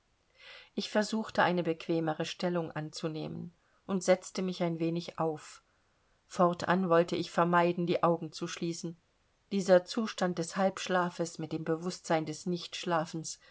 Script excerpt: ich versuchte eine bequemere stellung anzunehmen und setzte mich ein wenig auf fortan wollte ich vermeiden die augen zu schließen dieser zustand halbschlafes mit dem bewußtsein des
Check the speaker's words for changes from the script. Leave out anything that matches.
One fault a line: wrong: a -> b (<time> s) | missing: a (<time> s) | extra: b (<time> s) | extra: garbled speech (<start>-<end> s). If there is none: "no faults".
extra: des (10.4 s)